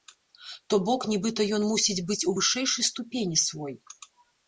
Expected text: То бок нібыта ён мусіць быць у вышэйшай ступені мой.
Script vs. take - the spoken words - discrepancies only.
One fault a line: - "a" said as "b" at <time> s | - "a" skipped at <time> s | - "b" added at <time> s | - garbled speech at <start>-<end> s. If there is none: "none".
- "мой" said as "свой" at 3.5 s